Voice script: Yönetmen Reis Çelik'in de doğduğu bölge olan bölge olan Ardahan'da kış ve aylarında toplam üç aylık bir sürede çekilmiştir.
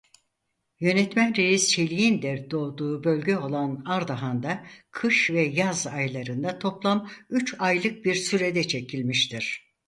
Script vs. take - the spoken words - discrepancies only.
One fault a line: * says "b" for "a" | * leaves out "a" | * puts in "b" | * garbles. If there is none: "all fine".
* leaves out "bölge olan"
* puts in "yaz"